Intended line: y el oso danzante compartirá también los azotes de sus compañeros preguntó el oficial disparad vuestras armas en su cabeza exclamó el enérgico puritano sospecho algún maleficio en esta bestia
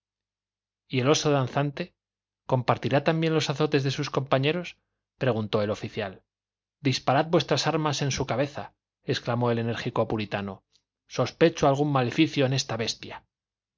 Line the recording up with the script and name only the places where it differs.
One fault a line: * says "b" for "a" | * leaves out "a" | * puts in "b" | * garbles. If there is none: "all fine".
all fine